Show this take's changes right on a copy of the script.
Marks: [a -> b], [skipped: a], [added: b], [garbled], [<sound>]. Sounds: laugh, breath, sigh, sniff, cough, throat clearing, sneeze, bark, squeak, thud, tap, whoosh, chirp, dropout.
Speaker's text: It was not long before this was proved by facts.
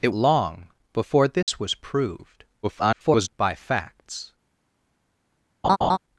It [skipped: was not] long before this [dropout] was proved [garbled] by facts. [laugh]